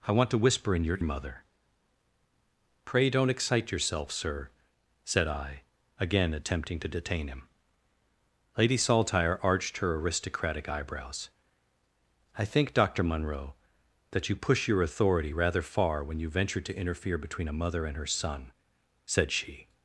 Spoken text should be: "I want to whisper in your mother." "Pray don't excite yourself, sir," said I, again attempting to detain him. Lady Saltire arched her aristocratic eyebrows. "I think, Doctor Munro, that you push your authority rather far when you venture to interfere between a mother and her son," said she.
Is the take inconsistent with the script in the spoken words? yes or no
no